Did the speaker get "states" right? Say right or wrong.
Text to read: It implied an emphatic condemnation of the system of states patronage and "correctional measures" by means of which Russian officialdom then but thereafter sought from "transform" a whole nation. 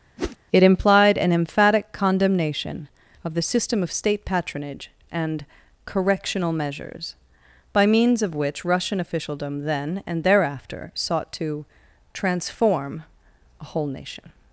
wrong